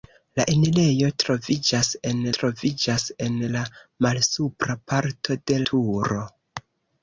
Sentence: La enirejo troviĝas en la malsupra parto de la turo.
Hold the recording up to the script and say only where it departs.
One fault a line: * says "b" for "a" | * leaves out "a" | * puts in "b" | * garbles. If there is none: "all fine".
* puts in "troviĝas en"
* leaves out "la"